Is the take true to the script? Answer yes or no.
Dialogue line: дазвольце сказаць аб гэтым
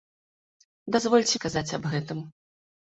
yes